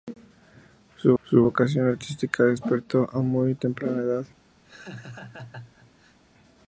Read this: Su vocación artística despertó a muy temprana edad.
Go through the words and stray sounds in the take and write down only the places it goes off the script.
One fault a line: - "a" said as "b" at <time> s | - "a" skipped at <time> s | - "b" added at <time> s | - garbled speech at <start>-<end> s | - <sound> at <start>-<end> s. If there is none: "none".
- "su" added at 1.2 s
- laugh at 4.6-6.2 s